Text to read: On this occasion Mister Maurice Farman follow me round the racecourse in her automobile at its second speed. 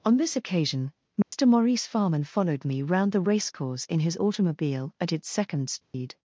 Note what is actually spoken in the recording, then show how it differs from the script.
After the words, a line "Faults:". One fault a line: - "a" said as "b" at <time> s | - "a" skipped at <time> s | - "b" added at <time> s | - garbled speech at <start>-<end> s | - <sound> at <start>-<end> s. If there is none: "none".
On this occasion Mister Maurice Farman followed me round the racecourse in his automobile at its second speed.
Faults:
- dropout at 1.2-1.3 s
- "follow" said as "followed" at 2.2 s
- "her" said as "his" at 4.0 s
- dropout at 5.8-5.9 s